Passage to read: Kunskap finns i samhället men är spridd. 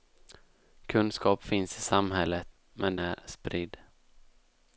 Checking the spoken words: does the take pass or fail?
pass